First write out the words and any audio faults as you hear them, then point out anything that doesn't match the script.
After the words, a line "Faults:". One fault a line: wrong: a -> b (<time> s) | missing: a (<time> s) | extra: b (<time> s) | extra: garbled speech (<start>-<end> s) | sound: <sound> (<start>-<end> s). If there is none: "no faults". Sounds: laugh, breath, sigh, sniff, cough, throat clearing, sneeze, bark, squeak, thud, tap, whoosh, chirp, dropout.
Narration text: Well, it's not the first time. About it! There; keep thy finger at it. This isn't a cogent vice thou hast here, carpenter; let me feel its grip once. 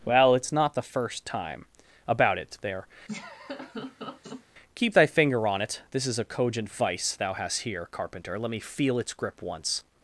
Well, it's not the first time. About it! There; keep thy finger on it. This is a cogent vice thou hast here, carpenter; let me feel its grip once.
Faults:
sound: laugh (3.1-4.4 s)
wrong: at -> on (5.5 s)
wrong: isn't -> is (6.1 s)